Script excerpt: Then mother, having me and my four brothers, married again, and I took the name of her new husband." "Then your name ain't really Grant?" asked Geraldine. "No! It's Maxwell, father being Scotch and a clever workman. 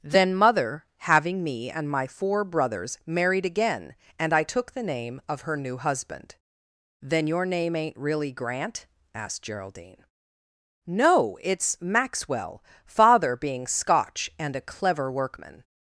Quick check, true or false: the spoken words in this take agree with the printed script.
true